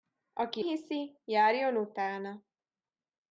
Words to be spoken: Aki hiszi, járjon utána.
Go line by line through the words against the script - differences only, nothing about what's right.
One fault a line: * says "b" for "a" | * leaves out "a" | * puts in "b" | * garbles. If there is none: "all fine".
all fine